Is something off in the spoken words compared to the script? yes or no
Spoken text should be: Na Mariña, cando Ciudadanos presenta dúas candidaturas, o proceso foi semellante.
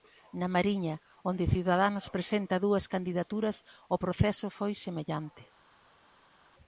yes